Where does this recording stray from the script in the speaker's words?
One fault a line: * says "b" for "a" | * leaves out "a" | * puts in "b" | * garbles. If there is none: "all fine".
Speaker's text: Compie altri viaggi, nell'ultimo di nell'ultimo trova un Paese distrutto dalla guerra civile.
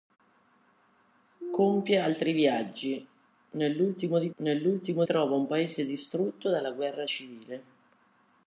all fine